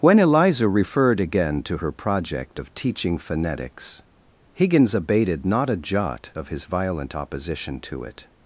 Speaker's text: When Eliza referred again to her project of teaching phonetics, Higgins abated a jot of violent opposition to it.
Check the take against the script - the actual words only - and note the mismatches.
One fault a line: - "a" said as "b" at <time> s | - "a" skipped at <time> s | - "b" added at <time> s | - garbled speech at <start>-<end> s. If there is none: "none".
- "not" added at 5.4 s
- "his" added at 6.5 s